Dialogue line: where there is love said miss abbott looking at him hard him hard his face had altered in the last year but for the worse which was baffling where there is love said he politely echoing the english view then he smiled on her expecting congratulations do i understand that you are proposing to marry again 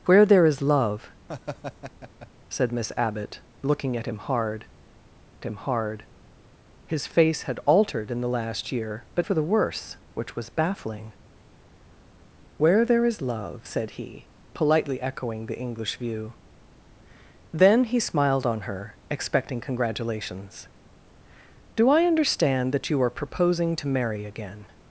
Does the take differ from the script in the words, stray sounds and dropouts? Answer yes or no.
yes